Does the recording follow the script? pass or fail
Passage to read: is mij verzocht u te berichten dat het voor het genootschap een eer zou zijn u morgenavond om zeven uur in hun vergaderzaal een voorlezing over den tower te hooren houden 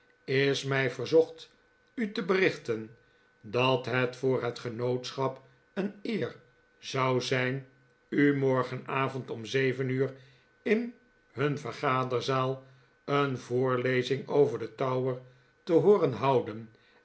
pass